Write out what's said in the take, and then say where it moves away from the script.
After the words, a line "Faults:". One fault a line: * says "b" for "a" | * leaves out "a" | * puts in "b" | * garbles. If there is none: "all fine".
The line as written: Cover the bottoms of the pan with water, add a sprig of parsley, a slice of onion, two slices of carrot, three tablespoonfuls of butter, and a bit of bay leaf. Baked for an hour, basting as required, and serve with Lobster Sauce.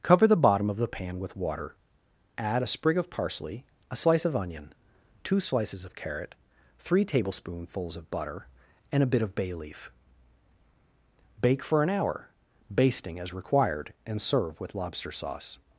Cover the bottom of the pan with water, add a sprig of parsley, a slice of onion, two slices of carrot, three tablespoonfuls of butter, and a bit of bay leaf. Bake for an hour, basting as required, and serve with Lobster Sauce.
Faults:
* says "bottom" for "bottoms"
* says "Bake" for "Baked"